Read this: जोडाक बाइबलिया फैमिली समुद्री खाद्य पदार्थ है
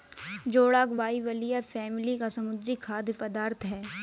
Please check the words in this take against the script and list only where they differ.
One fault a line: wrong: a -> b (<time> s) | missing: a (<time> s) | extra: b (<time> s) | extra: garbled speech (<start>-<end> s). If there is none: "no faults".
extra: का (2.1 s)